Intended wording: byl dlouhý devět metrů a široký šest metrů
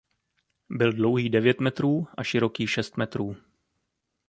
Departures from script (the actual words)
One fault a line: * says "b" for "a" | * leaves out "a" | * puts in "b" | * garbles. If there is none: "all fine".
all fine